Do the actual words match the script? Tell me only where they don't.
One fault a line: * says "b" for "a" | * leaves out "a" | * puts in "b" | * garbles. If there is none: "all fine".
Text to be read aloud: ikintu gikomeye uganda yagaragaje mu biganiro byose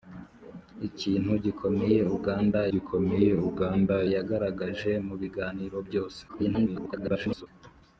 * puts in "gikomeye uganda"
* garbles